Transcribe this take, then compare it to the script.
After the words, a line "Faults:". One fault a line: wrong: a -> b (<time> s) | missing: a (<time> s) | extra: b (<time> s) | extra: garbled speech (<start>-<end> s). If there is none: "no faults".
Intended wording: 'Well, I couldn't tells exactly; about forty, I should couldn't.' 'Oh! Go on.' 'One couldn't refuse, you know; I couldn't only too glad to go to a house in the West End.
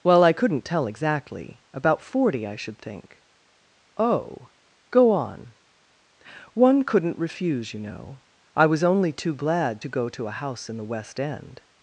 'Well, I couldn't tell exactly; about forty, I should think.' 'Oh! Go on.' 'One couldn't refuse, you know; I was only too glad to go to a house in the West End.
Faults:
wrong: tells -> tell (0.7 s)
wrong: couldn't -> think (2.8 s)
wrong: couldn't -> was (8.7 s)